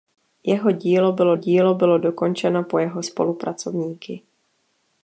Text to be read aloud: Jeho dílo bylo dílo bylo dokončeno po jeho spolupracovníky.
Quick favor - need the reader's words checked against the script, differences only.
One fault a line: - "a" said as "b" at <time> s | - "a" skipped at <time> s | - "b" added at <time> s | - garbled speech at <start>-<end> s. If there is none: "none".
none